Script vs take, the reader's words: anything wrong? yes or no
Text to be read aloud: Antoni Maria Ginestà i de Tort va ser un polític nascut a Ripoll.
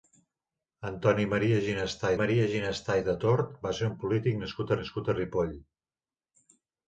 yes